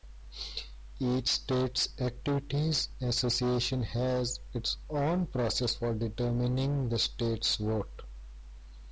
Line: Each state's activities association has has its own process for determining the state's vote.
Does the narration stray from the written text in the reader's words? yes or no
yes